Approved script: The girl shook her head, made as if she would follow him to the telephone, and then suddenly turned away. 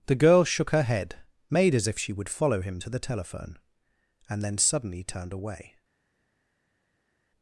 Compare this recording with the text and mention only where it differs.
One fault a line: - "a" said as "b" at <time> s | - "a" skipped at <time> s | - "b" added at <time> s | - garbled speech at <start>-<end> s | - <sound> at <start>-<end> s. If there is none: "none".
none